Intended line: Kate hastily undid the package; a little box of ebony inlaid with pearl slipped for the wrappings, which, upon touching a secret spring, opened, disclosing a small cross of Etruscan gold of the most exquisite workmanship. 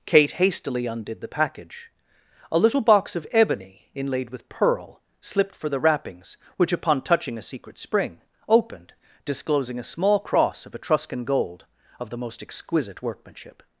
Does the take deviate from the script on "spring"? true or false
false